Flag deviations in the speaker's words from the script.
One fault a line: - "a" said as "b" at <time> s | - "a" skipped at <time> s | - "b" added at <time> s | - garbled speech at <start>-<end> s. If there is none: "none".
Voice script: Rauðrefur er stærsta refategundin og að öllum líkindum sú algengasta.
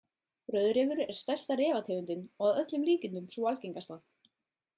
none